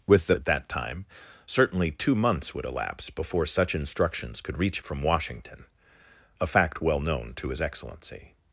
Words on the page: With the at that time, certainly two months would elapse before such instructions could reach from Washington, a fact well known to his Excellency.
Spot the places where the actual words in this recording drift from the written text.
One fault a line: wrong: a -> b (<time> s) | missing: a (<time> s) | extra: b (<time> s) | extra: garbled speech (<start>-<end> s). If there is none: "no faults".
no faults